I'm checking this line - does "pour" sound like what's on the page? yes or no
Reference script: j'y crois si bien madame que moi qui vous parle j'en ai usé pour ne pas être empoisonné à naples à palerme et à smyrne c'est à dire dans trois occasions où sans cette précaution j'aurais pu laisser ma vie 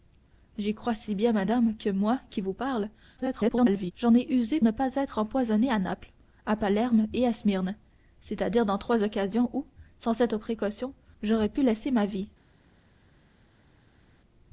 no